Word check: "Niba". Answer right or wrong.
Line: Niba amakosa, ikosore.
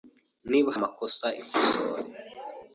right